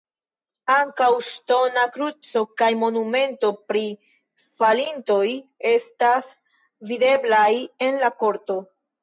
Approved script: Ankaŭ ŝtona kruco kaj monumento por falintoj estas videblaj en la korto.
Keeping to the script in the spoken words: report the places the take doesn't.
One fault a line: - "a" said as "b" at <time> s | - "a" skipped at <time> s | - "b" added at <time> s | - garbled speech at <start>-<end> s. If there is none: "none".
- "por" said as "pri" at 3.7 s